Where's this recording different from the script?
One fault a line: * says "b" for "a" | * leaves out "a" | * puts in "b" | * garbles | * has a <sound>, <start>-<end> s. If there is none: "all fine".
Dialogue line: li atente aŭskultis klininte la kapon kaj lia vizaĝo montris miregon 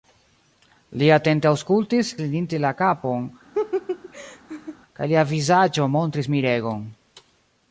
* has a laugh, 3.5-4.8 s